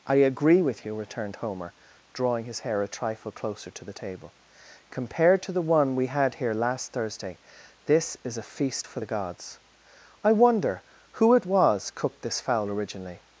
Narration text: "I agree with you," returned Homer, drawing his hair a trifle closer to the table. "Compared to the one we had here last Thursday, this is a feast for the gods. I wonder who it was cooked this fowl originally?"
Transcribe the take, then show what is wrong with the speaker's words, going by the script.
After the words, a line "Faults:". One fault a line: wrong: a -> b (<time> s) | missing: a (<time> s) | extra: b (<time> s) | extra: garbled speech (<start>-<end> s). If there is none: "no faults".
"I agree with you," returned Homer, drawing his hair a trifle closer to the table. "Compared to the one we had here last Thursday, this is a feast for the gods. I wonder who it was cooked this fowl originally?"
Faults:
no faults